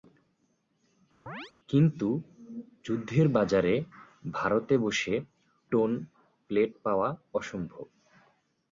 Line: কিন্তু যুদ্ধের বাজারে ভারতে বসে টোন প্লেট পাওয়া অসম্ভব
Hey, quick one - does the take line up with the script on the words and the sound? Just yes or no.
no